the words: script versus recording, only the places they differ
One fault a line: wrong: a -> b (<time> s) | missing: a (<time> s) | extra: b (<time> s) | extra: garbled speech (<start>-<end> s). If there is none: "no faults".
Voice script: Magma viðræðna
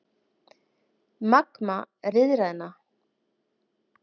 no faults